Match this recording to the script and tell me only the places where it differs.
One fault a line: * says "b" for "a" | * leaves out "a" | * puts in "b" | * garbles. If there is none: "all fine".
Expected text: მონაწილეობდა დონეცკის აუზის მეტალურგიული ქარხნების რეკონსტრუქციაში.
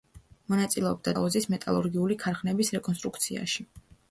* leaves out "დონეცკის"